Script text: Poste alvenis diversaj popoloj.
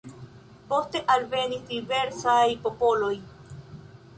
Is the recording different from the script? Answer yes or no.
no